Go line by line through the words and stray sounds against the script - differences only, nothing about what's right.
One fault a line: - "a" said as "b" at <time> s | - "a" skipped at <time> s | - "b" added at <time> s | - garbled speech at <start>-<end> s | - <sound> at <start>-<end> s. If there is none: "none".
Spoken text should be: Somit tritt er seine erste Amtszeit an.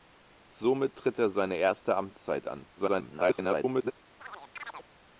- garbled speech at 2.8-3.9 s
- chirp at 4.2-4.9 s